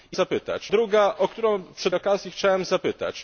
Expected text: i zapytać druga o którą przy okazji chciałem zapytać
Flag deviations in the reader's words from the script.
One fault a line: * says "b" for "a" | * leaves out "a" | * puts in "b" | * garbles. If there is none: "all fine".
all fine